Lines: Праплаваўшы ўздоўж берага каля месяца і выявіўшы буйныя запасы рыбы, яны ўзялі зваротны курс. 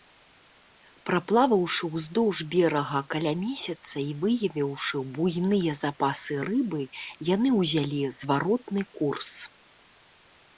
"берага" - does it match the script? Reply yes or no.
yes